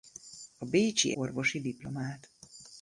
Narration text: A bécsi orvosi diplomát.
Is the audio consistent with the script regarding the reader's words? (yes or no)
yes